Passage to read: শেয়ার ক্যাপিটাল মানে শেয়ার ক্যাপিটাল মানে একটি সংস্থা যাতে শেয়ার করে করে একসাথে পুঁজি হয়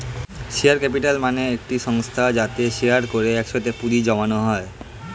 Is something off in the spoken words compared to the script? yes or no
yes